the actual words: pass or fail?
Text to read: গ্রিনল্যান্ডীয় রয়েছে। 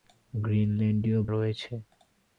pass